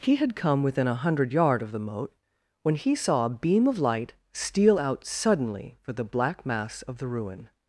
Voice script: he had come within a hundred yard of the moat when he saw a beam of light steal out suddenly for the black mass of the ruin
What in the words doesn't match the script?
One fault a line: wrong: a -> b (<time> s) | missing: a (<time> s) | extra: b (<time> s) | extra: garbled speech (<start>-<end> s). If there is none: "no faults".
no faults